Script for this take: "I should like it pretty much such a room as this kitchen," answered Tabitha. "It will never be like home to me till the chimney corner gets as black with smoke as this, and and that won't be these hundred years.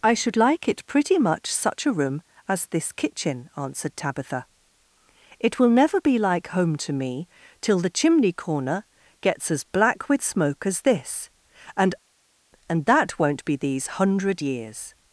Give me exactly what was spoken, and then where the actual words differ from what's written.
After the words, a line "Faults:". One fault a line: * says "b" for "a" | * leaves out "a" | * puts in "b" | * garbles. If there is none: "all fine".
"I should like it pretty much such a room as this kitchen," answered Tabitha. "It will never be like home to me till the chimney corner gets as black with smoke as this, and and that won't be these hundred years.
Faults:
all fine